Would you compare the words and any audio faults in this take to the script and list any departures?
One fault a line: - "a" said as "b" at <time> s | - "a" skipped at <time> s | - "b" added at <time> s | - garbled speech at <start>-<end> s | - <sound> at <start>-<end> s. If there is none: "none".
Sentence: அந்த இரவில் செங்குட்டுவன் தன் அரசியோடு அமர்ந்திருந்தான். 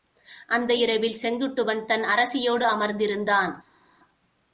none